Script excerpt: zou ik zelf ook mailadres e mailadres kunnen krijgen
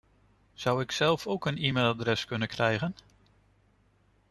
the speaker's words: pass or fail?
fail